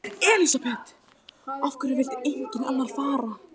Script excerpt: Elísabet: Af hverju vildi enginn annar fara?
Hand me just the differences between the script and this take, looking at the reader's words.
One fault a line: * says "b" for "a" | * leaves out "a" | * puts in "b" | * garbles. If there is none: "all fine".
all fine